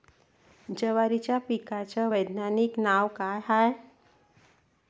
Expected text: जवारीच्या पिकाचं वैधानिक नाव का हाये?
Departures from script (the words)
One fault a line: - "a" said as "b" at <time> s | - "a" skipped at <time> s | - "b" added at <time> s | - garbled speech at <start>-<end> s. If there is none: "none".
none